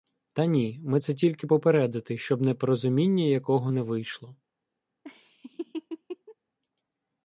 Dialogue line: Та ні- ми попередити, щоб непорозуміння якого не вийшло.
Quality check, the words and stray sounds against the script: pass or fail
fail